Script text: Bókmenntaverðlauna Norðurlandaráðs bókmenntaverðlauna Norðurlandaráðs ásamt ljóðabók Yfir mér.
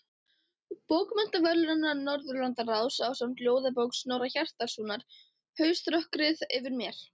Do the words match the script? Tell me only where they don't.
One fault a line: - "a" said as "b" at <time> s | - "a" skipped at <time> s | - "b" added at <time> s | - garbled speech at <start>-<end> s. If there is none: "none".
- "bókmenntaverðlauna Norðurlandaráðs ásamt ljóðabók" said as "ásamt ljóðabók Snorra Hjartarsonar Hauströkkrið" at 3.1 s